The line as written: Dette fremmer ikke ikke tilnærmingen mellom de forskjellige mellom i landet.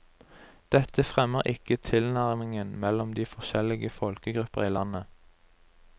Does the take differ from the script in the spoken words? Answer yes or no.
yes